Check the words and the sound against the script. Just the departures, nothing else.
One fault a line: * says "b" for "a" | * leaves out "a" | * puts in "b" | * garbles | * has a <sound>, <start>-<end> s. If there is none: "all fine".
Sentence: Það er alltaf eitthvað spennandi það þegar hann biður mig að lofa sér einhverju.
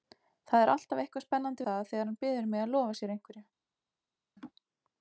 * has a laugh, 4.4-4.5 s